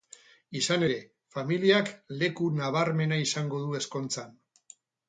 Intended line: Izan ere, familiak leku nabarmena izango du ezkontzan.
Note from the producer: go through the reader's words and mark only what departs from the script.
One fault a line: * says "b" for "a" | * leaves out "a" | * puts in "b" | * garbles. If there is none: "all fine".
all fine